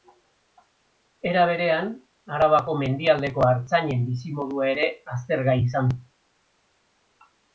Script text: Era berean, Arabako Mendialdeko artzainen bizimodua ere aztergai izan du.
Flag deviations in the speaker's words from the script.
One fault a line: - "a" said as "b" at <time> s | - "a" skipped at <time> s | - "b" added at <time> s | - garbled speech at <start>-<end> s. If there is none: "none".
none